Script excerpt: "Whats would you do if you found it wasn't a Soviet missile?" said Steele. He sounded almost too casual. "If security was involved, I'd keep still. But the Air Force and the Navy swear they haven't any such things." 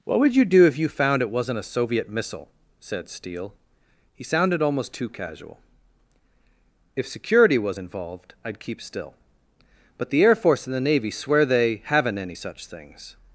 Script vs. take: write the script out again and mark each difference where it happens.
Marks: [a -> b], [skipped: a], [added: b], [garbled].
["Whats -> What] would you do if you found it wasn't a Soviet missile?" said Steele. He sounded almost too casual. "If security was involved, I'd keep still. But the Air Force and the Navy swear they haven't any such things."